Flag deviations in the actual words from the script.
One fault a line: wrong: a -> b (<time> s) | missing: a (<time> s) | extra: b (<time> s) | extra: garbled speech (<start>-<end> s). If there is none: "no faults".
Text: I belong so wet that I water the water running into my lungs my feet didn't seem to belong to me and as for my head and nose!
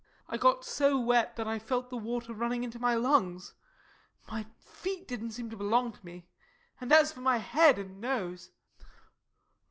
wrong: belong -> got (0.4 s)
wrong: water -> felt (1.6 s)